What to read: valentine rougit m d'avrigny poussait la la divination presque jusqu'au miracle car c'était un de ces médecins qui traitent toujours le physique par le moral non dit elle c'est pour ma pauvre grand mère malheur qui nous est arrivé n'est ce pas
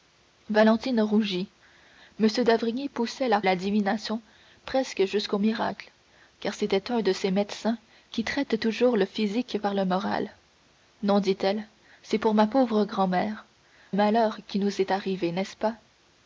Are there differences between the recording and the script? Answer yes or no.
no